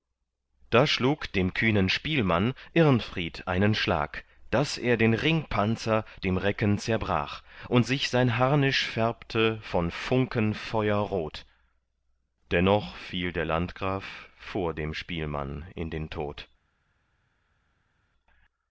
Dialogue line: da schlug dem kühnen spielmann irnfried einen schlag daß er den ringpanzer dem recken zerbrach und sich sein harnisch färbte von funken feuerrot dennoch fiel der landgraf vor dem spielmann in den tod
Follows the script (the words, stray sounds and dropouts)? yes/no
yes